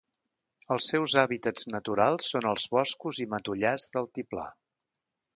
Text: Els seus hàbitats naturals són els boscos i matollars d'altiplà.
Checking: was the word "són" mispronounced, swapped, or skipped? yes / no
no